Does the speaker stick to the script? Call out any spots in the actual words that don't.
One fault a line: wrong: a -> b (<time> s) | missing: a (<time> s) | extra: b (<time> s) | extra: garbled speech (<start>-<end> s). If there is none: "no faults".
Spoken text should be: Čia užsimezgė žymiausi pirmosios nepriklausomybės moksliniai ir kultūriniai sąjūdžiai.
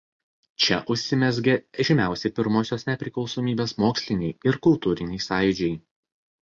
no faults